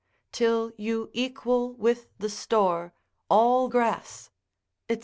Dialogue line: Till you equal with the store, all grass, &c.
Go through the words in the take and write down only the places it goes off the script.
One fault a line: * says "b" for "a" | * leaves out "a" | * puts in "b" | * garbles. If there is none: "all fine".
all fine